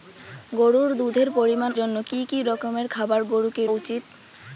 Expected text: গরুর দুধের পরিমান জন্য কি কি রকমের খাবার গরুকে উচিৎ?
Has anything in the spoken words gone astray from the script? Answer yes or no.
no